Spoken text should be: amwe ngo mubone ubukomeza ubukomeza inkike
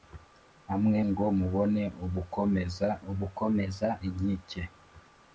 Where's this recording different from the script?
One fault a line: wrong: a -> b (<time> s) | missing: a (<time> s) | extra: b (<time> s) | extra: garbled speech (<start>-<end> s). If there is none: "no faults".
no faults